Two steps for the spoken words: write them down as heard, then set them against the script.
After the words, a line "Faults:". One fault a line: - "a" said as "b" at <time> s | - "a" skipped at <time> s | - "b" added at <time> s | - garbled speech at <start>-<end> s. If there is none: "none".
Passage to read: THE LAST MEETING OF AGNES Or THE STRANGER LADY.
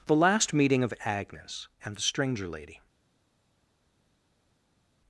THE LAST MEETING OF AGNES AND THE STRANGER LADY.
Faults:
- "Or" said as "AND" at 1.8 s